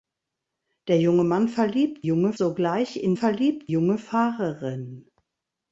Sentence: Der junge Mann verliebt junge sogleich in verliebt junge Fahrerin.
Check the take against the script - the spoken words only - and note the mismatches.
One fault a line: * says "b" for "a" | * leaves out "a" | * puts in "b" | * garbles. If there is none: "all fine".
all fine